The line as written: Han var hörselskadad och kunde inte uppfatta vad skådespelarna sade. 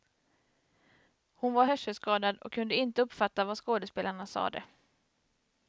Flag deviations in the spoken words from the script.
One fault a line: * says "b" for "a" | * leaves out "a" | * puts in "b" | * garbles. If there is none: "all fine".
* says "Hon" for "Han"